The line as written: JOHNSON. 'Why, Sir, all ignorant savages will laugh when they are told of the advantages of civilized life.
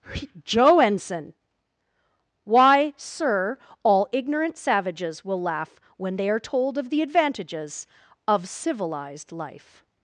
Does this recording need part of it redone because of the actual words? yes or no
yes